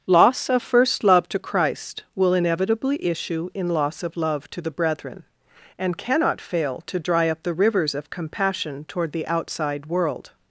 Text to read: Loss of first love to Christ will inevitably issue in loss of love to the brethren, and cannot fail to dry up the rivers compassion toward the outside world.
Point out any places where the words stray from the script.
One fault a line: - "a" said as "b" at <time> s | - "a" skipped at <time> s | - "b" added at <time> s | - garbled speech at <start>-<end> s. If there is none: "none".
- "of" added at 7.9 s